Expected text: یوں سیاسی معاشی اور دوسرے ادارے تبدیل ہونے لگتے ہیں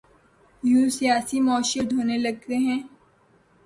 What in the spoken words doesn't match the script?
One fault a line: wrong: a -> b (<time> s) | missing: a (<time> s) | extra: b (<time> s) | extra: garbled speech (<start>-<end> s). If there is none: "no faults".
missing: دوسرے ادارے تبدیل (1.9 s)